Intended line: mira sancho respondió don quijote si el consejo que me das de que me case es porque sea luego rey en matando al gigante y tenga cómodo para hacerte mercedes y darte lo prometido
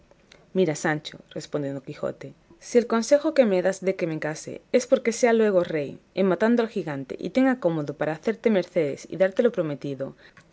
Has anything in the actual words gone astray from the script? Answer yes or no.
no